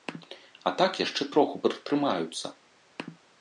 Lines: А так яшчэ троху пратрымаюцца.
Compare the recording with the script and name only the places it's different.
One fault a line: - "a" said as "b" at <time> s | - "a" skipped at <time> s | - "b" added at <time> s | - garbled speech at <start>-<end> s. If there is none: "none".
none